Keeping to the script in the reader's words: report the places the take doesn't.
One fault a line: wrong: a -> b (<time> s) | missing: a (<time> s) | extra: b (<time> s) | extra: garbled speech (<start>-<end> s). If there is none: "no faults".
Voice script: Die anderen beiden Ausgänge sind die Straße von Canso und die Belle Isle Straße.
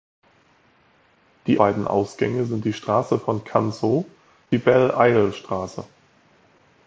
missing: anderen (1.6 s)
missing: und (4.0 s)